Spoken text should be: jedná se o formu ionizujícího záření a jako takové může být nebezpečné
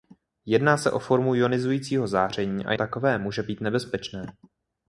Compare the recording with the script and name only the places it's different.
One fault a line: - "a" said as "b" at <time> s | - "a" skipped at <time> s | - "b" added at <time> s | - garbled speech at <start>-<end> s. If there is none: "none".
- "jako" skipped at 2.7 s